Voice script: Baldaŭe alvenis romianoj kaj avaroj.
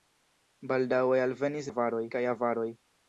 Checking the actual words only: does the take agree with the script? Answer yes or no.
no